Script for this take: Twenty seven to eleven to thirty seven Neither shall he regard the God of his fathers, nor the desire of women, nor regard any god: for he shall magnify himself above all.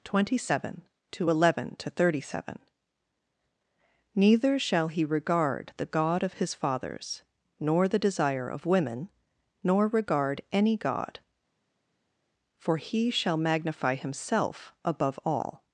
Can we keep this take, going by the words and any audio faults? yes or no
yes